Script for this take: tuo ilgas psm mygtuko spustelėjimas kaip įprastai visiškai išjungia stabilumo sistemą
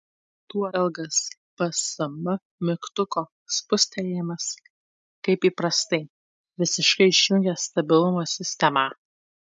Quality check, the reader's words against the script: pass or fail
pass